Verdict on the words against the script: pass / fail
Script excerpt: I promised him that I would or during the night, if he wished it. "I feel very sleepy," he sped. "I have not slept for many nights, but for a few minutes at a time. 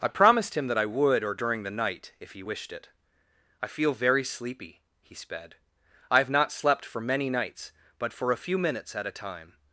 pass